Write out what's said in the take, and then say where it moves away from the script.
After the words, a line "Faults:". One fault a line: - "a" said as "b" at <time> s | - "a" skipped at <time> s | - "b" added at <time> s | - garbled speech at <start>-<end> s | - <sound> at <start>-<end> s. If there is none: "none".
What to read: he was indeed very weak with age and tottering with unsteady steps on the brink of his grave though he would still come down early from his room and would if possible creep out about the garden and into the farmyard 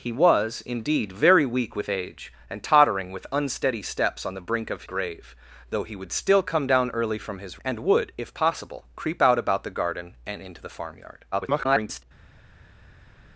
he was indeed very weak with age and tottering with unsteady steps on the brink of grave though he would still come down early from his and would if possible creep out about the garden and into the farmyard [garbled]
Faults:
- "his" skipped at 4.8 s
- "room" skipped at 7.6 s
- garbled speech at 11.3-12.0 s